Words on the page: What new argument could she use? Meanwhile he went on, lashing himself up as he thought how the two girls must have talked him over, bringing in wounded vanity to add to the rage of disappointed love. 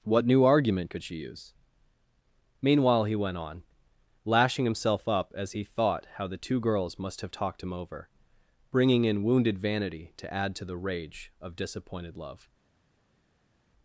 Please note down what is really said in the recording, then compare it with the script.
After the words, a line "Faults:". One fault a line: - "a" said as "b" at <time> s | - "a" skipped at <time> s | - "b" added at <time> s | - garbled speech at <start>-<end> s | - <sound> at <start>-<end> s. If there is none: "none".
What new argument could she use? Meanwhile he went on, lashing himself up as he thought how the two girls must have talked him over, bringing in wounded vanity to add to the rage of disappointed love.
Faults:
none